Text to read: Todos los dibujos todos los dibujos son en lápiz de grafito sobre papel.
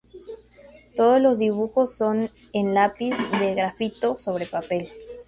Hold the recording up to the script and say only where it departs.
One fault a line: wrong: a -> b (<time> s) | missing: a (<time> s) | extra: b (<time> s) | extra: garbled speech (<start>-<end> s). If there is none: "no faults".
missing: todos los dibujos (1.9 s)